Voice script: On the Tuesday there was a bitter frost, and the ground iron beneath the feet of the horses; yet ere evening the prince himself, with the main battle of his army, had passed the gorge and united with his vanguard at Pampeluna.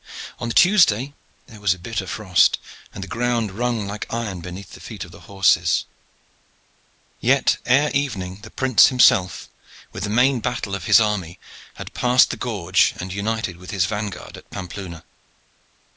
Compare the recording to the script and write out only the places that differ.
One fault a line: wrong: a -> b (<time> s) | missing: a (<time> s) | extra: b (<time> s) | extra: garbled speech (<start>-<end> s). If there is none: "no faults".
extra: rung like (3.5 s)